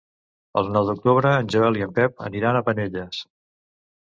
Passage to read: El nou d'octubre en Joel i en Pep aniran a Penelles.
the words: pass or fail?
pass